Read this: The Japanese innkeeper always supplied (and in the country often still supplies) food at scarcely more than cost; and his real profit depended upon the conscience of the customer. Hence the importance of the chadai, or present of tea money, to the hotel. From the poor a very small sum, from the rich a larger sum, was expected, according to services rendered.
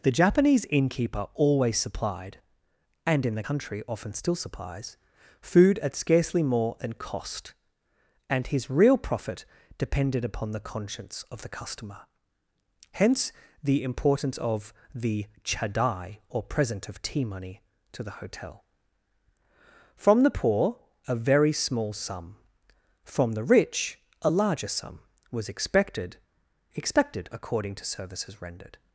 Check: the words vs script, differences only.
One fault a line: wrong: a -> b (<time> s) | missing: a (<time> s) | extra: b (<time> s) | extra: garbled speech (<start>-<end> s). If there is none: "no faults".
extra: expected (26.8 s)